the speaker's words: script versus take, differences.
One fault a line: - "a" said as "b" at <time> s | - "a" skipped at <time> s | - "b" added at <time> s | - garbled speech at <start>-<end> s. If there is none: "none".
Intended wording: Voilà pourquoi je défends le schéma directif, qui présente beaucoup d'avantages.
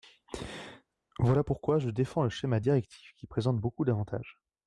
none